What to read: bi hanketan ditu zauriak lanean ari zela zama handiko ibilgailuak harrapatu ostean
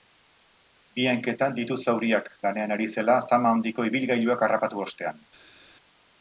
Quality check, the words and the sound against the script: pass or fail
pass